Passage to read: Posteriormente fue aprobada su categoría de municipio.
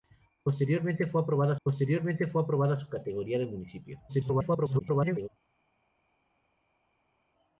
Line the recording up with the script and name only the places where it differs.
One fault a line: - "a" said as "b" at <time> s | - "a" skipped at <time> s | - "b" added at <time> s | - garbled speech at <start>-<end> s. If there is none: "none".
- "posteriormente fue aprobada" added at 1.6 s
- garbled speech at 4.1-5.3 s